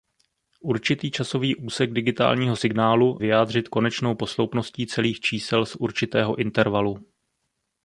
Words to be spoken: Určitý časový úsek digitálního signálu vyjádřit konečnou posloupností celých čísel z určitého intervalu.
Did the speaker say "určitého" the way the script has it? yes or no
yes